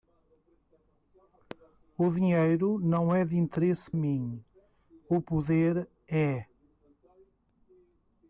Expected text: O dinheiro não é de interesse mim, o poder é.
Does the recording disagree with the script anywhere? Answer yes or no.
no